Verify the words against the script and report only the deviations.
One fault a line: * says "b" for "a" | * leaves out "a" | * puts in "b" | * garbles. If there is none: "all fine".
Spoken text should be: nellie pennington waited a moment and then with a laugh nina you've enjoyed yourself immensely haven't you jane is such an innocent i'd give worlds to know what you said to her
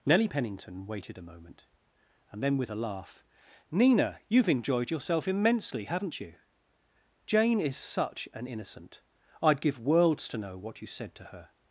all fine